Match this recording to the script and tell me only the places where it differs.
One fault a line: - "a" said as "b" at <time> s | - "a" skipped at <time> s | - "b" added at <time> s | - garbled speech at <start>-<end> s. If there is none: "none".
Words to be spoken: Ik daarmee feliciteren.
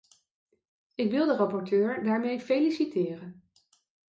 - "wil de rapporteur" added at 1.1 s